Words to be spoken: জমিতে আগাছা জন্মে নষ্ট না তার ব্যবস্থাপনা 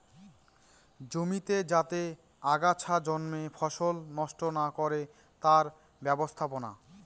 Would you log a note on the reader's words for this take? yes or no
yes